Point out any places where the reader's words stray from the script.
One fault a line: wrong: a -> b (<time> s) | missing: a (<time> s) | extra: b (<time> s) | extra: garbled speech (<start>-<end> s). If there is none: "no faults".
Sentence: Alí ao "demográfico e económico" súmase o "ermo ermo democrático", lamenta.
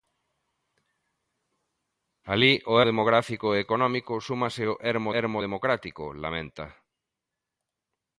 no faults